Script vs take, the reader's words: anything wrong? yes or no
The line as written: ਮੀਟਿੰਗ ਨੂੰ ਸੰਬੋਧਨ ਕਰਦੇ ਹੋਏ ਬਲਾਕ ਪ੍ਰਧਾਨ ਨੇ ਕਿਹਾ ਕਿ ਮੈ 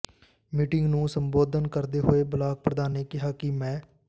no